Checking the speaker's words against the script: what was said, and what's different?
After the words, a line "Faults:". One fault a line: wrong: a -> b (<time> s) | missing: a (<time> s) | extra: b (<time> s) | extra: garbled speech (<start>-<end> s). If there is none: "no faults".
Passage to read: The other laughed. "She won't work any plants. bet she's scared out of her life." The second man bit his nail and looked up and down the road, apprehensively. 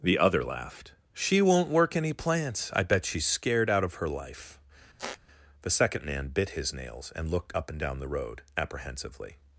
The other laughed. "She won't work any plants. I bet she's scared out of her life." The second man bit his nails and looked up and down the road, apprehensively.
Faults:
extra: I (2.7 s)
wrong: nail -> nails (6.7 s)